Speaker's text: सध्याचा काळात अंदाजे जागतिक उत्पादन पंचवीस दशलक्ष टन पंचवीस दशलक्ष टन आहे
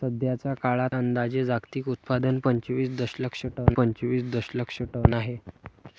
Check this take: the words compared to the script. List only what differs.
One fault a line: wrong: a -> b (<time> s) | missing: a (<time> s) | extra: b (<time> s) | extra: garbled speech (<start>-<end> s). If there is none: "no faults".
no faults